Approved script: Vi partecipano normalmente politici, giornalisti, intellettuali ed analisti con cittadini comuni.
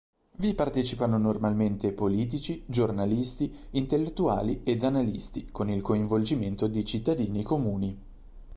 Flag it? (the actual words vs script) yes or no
yes